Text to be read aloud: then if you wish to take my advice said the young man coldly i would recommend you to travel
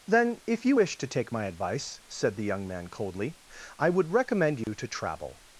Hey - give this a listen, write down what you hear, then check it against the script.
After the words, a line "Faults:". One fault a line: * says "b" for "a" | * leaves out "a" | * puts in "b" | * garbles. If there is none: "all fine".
then if you wish to take my advice said the young man coldly i would recommend you to travel
Faults:
all fine